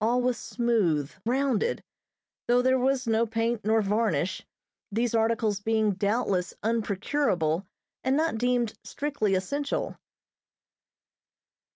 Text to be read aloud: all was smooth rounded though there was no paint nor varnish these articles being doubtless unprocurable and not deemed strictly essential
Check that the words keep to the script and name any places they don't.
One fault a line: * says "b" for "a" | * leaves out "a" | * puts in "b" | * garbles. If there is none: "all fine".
all fine